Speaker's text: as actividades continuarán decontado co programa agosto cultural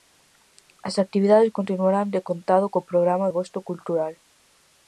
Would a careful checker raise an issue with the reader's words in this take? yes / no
no